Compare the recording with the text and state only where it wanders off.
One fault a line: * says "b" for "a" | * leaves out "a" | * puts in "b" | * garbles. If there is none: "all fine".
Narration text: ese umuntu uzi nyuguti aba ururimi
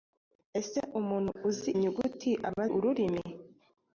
all fine